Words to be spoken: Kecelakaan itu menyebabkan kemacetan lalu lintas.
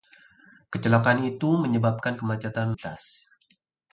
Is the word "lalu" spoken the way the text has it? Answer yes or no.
no